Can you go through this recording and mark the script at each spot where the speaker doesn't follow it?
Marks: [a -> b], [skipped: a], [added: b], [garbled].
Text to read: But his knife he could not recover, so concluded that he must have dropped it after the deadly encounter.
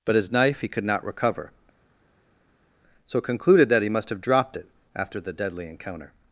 But his knife he could not recover, so concluded that he must have dropped it after the deadly encounter.